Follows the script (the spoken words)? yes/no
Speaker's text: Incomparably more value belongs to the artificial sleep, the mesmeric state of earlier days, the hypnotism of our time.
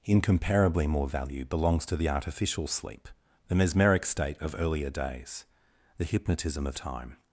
no